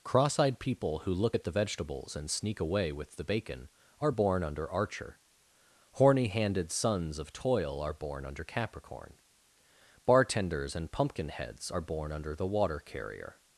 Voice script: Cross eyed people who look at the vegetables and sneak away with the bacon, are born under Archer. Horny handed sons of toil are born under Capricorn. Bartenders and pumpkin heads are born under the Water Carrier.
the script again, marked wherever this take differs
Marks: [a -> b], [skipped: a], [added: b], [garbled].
Cross eyed people who look at the vegetables and sneak away with the bacon, are born under Archer. Horny handed sons of toil are born under Capricorn. Bartenders and pumpkin heads are born under the Water Carrier.